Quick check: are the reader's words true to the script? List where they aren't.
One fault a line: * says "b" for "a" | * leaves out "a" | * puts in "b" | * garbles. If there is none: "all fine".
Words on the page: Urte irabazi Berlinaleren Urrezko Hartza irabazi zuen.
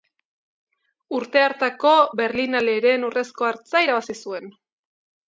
* says "hartako" for "irabazi"